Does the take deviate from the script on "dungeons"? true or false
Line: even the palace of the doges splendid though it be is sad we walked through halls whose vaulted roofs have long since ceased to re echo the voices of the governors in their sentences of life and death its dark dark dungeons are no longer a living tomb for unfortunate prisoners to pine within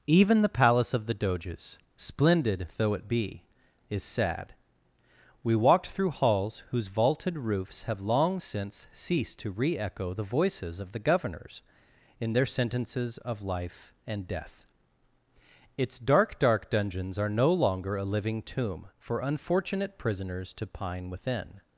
false